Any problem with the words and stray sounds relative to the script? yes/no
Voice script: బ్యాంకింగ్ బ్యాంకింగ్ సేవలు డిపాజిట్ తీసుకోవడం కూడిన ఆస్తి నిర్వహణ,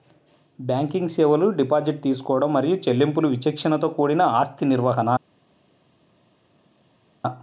yes